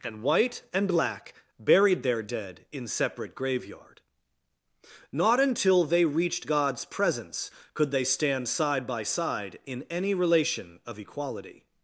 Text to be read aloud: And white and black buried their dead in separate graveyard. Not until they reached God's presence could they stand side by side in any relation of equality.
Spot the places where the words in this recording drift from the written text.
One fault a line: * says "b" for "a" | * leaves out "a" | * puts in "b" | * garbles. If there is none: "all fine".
all fine